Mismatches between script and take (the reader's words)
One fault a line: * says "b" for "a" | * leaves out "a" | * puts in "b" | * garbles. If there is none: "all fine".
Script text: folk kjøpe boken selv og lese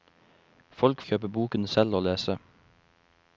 all fine